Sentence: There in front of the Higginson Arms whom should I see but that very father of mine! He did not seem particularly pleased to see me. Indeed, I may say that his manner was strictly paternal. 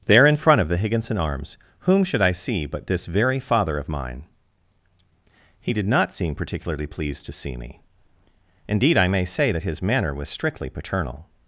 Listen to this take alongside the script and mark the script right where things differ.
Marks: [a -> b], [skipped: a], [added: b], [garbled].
There in front of the Higginson Arms whom should I see but [that -> this] very father of mine! He did not seem particularly pleased to see me. Indeed, I may say that his manner was strictly paternal.